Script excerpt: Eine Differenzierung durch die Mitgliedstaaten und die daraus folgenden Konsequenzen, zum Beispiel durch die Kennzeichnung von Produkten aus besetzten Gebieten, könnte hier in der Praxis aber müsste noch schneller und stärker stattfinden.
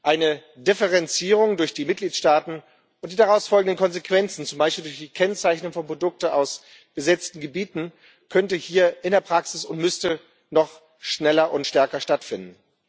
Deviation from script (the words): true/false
true